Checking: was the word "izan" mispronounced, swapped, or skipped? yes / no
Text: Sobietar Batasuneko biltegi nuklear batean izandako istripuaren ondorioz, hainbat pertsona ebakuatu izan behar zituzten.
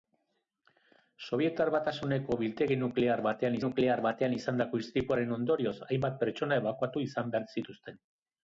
no